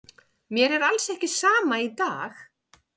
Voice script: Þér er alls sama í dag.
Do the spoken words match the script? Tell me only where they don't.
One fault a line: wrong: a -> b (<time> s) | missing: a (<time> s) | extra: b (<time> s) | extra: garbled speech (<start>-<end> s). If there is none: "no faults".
wrong: Þér -> Mér (0.5 s)
extra: ekki (1.1 s)